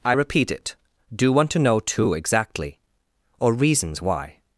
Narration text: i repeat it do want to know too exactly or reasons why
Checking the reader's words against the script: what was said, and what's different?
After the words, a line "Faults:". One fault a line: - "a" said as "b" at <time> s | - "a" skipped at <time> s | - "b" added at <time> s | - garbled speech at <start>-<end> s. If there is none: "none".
i repeat it do want to know too exactly or reasons why
Faults:
none